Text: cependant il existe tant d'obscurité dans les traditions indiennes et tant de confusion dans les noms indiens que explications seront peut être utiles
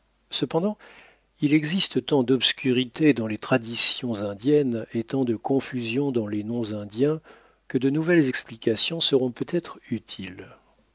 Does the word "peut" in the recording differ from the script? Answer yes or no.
no